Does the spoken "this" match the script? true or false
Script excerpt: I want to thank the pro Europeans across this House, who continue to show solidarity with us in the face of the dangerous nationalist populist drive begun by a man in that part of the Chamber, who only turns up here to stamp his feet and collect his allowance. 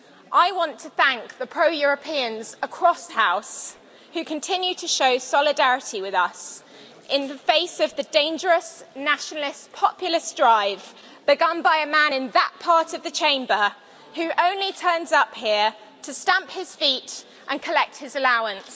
false